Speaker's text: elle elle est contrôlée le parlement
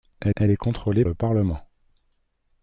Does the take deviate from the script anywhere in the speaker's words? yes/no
no